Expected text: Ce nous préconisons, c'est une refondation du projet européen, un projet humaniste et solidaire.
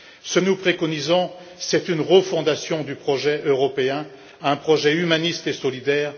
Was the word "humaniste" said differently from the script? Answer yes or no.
no